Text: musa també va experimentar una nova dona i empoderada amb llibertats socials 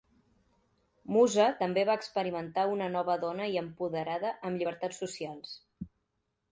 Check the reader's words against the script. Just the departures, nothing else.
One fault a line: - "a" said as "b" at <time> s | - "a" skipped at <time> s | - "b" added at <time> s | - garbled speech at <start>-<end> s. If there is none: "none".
none